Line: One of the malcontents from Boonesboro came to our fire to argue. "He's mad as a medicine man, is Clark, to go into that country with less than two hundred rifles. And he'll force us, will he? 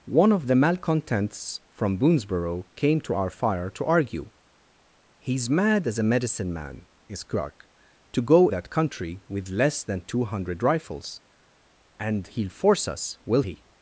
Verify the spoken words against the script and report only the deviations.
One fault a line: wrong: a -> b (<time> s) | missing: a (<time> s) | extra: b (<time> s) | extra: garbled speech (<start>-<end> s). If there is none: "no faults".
missing: into (8.5 s)